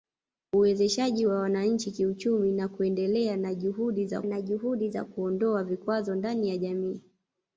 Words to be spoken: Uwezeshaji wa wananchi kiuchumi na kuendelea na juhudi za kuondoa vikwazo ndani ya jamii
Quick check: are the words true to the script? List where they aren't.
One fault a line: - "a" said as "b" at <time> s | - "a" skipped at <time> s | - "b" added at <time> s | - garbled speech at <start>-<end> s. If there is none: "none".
- "na juhudi za" added at 4.2 s